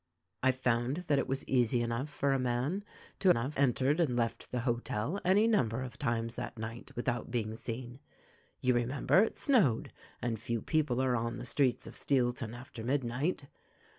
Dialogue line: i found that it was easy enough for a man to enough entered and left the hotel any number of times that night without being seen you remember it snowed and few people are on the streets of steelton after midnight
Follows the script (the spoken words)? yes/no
yes